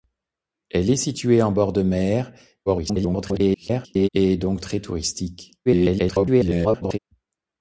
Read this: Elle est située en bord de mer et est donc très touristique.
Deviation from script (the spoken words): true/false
true